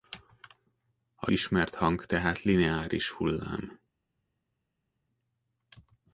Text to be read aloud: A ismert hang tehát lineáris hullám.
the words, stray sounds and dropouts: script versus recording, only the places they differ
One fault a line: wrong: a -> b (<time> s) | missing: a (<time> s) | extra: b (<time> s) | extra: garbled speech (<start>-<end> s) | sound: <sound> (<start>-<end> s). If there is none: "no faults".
no faults